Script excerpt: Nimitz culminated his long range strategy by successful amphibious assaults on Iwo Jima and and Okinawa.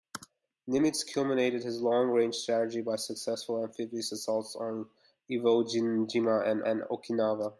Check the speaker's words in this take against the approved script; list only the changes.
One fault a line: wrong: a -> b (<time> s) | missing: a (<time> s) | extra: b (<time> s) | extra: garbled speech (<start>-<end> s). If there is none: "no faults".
no faults